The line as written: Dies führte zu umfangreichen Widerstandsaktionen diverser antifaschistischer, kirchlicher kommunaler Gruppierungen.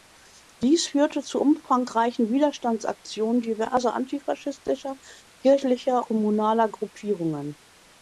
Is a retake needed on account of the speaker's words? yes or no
no